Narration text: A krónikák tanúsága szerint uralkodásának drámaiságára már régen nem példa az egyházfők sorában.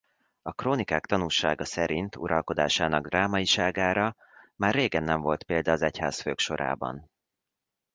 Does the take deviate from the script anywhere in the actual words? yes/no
yes